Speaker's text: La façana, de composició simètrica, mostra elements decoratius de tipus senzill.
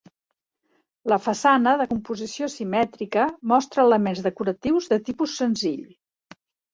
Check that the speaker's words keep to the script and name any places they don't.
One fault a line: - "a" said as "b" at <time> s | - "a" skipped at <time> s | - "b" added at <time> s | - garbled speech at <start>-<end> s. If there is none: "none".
none